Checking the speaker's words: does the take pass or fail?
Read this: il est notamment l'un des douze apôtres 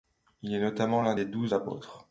pass